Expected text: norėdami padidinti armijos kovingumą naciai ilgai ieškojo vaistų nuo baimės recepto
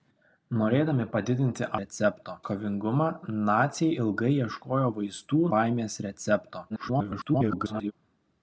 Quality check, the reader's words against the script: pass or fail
fail